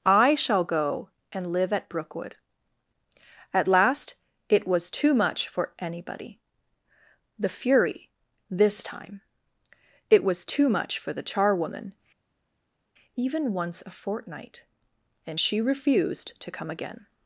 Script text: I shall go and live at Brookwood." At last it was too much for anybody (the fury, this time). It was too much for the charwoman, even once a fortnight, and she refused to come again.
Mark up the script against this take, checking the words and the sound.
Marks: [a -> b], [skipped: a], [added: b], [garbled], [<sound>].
I shall go and live at Brookwood." At last it was too much for anybody (the fury, this time). It was too much for the charwoman, even once a fortnight, and she refused to come again.